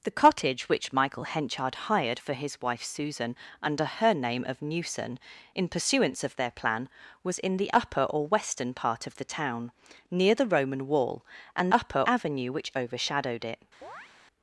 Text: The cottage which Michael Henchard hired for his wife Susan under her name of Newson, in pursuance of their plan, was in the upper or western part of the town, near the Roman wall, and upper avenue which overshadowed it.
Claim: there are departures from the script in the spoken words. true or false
false